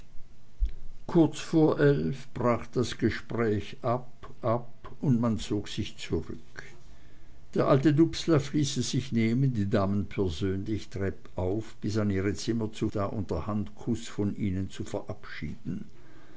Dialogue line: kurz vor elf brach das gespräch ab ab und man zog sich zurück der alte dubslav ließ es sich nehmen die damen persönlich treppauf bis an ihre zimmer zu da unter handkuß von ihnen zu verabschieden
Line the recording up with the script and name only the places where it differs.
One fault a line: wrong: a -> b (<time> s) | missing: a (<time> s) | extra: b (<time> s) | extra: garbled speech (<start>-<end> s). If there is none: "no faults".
no faults